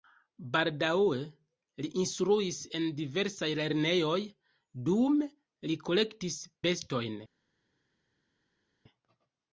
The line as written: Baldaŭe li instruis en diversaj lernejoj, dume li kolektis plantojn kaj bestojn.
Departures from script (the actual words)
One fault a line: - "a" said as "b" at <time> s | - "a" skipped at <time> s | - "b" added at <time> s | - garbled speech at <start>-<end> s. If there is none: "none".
- "plantojn kaj" skipped at 6.4 s